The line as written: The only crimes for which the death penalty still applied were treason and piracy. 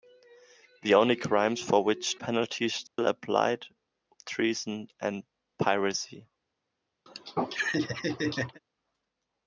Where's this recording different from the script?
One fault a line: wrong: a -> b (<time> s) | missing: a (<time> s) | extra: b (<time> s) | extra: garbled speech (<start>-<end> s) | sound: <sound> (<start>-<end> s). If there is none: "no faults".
missing: the death (2.2 s)
sound: dropout (2.9-3.0 s)
missing: were (3.7 s)
sound: laugh (7.1-8.6 s)